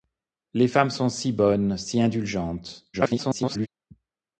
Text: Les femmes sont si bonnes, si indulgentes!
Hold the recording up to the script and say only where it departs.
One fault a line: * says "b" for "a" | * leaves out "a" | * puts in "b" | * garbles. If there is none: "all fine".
* garbles